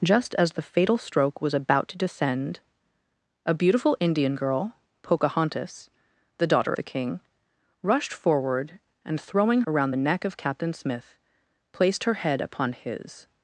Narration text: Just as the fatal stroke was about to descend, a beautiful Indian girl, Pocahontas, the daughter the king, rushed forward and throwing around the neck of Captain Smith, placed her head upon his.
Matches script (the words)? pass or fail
pass